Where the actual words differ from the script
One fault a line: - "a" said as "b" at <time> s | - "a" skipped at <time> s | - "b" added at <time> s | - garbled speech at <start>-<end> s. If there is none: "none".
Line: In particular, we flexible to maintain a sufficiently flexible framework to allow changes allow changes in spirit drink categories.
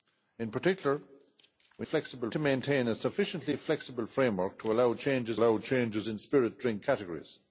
none